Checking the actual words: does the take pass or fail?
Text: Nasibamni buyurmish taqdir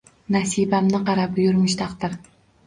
fail